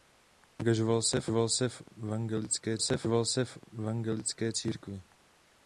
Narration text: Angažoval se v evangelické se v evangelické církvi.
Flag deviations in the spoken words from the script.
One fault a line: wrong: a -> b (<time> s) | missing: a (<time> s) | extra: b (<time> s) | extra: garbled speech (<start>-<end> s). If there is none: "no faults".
no faults